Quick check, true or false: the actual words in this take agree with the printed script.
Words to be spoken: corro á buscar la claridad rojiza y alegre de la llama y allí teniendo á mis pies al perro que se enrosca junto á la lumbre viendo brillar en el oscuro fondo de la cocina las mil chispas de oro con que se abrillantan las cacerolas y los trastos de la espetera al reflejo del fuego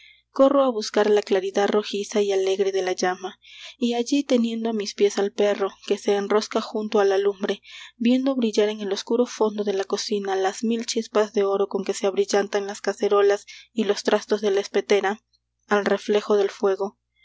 true